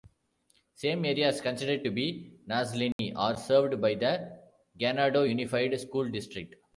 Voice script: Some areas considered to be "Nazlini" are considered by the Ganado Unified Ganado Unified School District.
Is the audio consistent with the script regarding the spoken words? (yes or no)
no